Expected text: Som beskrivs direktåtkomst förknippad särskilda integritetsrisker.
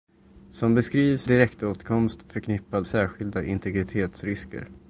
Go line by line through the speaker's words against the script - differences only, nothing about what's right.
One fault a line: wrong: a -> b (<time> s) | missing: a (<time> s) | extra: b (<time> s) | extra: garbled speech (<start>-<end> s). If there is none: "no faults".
no faults